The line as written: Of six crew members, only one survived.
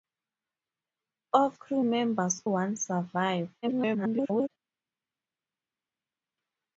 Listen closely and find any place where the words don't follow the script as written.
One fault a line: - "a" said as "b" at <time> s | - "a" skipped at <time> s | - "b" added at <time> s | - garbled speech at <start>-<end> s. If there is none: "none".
- "six" skipped at 1.6 s
- "only" skipped at 2.4 s
- garbled speech at 3.6-4.5 s